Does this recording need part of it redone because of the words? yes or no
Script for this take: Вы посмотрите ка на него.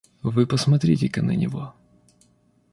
no